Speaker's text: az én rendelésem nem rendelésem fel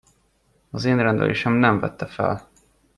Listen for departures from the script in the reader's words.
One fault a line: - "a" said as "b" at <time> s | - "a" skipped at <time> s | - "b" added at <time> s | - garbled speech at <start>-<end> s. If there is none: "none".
- "rendelésem" said as "vette" at 1.8 s